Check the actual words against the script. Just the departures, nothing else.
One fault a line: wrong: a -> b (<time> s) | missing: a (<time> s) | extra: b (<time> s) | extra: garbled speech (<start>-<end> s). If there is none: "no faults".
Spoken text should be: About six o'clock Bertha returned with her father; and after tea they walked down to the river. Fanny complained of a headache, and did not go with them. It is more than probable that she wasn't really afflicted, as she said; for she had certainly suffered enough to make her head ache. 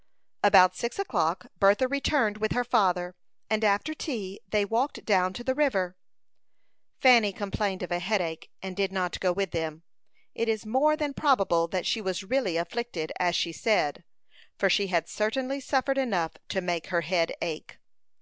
wrong: wasn't -> was (12.0 s)